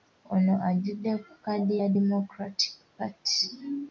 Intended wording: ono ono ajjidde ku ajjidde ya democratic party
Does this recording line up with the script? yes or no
no